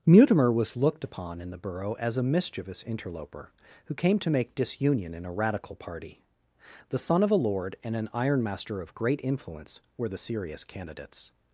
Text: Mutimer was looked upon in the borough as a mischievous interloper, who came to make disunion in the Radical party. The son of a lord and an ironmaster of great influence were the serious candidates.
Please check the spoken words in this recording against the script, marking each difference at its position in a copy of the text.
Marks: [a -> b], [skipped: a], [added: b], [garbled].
Mutimer was looked upon in the borough as a mischievous interloper, who came to make disunion in [the -> a] Radical party. The son of a lord and an ironmaster of great influence were the serious candidates.